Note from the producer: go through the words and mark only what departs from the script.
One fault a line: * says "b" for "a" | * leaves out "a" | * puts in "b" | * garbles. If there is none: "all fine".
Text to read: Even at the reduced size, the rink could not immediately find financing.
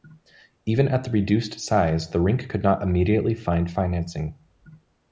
all fine